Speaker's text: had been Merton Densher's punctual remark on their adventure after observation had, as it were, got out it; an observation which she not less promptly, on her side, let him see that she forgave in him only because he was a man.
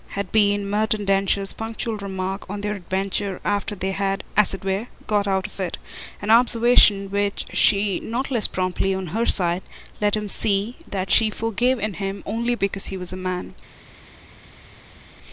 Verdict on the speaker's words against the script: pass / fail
fail